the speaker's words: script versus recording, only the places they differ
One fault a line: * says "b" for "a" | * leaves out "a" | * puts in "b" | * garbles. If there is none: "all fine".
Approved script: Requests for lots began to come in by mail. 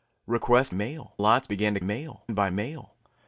* says "mail" for "for"
* says "mail" for "come"